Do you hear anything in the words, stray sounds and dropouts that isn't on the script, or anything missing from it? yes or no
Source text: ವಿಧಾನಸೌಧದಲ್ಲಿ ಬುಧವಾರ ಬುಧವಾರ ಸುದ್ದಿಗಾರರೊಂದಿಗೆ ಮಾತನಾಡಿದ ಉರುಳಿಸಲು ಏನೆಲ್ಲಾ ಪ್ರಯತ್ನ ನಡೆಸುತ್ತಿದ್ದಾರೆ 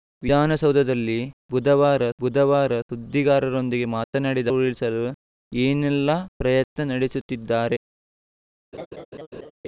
yes